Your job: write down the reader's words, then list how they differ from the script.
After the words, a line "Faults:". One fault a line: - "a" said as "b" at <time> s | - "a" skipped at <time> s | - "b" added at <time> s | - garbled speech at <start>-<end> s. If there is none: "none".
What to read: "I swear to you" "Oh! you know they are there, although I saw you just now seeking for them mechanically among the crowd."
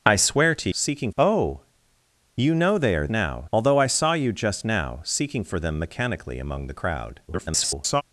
"I swear to seeking" "Oh! you know they are now, although I saw you just now seeking for them mechanically among the crowd." [garbled]
Faults:
- "you" said as "seeking" at 0.7 s
- "there" said as "now" at 3.1 s
- garbled speech at 7.3-8.0 s